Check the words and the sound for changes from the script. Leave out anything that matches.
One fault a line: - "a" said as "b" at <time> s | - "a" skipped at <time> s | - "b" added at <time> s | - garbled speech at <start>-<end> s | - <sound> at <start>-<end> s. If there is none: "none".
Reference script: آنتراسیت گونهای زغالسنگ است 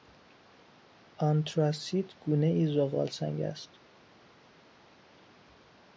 none